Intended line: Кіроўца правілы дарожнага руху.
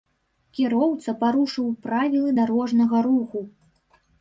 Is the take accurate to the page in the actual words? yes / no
no